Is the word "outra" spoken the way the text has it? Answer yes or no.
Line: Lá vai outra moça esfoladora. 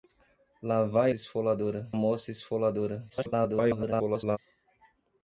no